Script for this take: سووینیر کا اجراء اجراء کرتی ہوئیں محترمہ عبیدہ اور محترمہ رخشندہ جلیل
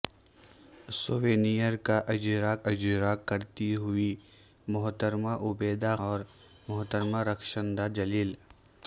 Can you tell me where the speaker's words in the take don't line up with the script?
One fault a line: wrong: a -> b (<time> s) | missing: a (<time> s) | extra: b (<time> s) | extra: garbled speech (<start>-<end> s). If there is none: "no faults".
no faults